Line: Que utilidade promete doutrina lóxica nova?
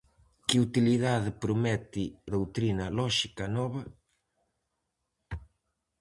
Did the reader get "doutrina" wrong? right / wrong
right